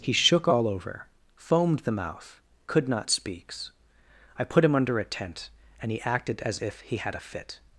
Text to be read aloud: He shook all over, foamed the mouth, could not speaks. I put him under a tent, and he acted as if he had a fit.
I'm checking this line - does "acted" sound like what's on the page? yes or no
yes